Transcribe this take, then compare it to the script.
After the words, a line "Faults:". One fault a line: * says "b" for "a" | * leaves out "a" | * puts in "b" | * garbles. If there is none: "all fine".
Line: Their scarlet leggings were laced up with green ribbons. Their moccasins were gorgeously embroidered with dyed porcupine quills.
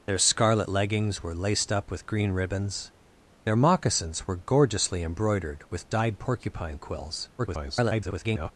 Their scarlet leggings were laced up with green ribbons. Their moccasins were gorgeously embroidered with dyed porcupine quills. [garbled]
Faults:
* garbles